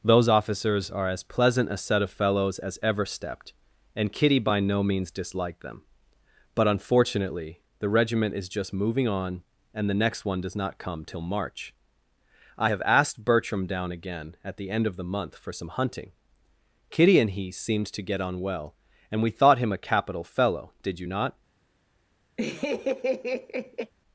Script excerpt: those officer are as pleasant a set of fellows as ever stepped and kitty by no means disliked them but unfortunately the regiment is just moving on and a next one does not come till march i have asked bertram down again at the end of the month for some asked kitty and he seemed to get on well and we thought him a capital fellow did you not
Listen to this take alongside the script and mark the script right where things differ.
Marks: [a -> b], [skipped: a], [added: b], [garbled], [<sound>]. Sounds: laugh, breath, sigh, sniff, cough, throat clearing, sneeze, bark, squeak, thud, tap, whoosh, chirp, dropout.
those [officer -> officers] are as pleasant a set of fellows as ever stepped and kitty by no means disliked them but unfortunately the regiment is just moving on and [a -> the] next one does not come till march i have asked bertram down again at the end of the month for some [asked -> hunting] kitty and he seemed to get on well and we thought him a capital fellow did you not [laugh]